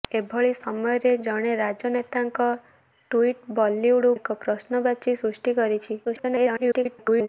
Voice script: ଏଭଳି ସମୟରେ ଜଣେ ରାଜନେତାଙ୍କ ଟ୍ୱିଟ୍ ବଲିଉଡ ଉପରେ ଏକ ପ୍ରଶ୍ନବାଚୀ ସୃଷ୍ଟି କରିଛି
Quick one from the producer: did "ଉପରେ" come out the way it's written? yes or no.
no